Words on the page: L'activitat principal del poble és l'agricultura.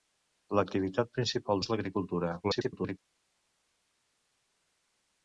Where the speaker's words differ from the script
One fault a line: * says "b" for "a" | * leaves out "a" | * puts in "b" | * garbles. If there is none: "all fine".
* leaves out "del poble"
* garbles